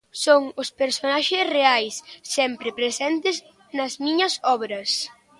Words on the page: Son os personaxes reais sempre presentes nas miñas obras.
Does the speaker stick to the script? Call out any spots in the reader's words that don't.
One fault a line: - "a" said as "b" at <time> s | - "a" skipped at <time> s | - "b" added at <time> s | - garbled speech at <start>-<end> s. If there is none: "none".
none